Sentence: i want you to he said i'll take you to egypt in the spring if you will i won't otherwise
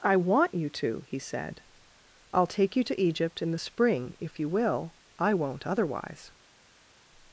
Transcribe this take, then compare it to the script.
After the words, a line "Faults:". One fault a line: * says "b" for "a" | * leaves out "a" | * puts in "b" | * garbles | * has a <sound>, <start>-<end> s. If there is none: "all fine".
i want you to he said i'll take you to egypt in the spring if you will i won't otherwise
Faults:
all fine